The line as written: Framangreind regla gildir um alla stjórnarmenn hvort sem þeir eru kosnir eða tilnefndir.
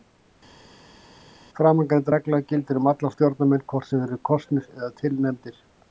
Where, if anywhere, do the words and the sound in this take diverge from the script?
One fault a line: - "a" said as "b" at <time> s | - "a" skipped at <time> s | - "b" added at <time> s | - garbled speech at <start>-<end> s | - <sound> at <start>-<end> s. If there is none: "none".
none